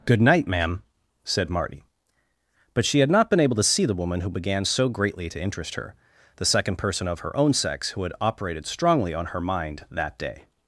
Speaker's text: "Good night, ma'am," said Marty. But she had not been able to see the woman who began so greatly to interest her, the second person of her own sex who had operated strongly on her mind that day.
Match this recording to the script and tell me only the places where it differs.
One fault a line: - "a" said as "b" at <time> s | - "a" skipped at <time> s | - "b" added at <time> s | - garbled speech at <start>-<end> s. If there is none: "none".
none